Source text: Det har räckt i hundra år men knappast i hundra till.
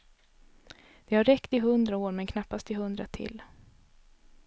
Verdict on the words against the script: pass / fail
pass